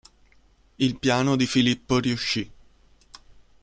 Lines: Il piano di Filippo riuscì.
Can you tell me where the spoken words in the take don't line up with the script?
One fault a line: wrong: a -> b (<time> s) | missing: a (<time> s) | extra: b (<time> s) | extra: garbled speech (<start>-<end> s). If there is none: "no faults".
no faults